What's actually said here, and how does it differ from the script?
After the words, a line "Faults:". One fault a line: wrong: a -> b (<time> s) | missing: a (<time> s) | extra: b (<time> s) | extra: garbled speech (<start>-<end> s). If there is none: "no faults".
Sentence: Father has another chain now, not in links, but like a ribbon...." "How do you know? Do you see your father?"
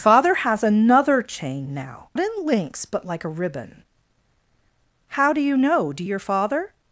Father has another chain now, in links, but like a ribbon...." "How do you know? Do your father?"
Faults:
missing: not (2.1 s)
missing: you see (6.0 s)